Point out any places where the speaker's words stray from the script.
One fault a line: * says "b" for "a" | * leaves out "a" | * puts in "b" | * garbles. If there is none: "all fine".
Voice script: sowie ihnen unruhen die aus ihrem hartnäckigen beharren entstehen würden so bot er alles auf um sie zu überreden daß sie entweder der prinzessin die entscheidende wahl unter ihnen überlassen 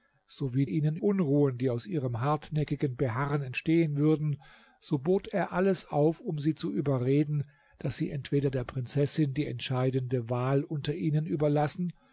all fine